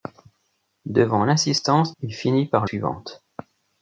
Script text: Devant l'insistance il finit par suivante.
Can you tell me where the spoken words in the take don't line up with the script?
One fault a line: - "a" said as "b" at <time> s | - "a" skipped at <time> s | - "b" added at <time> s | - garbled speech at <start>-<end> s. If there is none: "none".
none